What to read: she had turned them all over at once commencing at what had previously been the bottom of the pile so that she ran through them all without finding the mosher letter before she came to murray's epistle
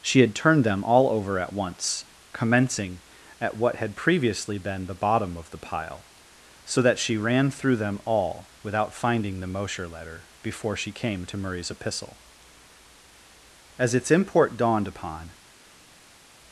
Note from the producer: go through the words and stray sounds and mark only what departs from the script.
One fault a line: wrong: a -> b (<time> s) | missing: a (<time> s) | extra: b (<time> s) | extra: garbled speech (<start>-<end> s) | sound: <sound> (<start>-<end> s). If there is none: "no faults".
extra: as its import dawned upon (13.8 s)